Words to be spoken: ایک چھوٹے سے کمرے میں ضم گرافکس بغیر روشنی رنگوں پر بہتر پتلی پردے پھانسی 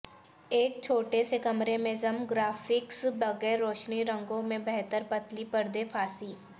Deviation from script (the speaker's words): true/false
true